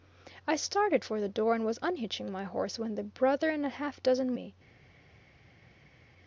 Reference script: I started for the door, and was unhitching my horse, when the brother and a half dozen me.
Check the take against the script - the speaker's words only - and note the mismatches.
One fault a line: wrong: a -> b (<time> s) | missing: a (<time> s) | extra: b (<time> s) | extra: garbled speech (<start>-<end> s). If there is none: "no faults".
no faults